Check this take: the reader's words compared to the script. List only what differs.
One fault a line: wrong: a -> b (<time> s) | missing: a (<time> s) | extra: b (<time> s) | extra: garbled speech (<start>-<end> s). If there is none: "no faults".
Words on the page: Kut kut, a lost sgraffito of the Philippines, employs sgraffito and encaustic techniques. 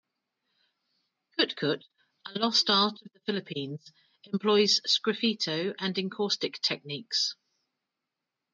wrong: sgraffito -> art (2.7 s)